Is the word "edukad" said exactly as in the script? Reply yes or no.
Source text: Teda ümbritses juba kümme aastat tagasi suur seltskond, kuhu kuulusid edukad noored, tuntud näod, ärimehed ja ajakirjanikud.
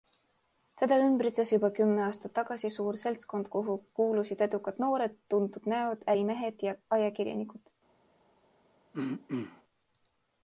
yes